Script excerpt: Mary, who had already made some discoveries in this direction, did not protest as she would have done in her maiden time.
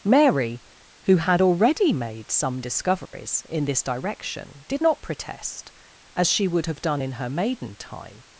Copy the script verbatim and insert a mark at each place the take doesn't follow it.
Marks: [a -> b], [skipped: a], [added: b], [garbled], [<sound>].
Mary, who had already made some discoveries [dropout] in this direction, did not protest as she would have done in her maiden time.